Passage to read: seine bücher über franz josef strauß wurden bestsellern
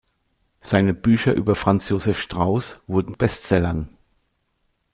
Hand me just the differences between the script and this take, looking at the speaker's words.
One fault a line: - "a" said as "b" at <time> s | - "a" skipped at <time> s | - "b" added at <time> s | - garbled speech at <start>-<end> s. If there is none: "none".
none